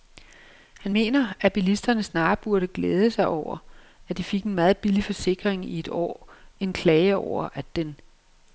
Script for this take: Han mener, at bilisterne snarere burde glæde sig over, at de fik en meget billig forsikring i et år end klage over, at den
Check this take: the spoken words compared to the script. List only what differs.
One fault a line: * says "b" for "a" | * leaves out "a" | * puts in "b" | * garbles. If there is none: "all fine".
all fine